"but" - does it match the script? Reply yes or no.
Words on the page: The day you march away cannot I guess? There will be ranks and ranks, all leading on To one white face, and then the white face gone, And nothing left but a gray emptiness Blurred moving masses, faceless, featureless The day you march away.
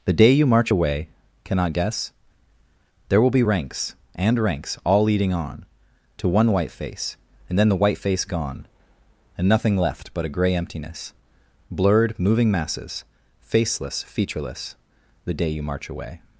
yes